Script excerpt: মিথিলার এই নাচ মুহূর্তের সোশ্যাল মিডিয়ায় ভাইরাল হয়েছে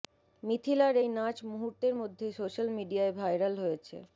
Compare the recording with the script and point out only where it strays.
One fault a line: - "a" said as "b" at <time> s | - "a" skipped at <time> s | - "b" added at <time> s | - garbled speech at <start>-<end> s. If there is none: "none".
- "মধ্যে" added at 2.0 s